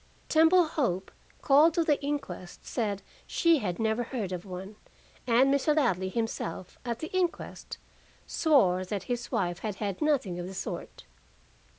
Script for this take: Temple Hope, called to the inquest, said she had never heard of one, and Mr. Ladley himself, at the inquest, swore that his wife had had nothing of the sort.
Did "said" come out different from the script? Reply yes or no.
no